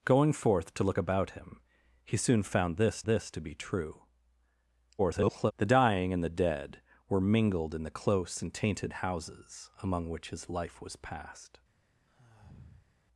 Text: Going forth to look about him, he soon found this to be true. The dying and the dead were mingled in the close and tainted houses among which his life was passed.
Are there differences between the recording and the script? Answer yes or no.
yes